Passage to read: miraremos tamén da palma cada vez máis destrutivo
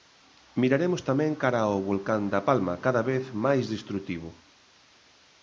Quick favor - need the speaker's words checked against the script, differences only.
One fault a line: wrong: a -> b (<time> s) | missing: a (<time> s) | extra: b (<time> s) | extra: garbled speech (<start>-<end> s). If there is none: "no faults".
extra: cara ao volcán (1.4 s)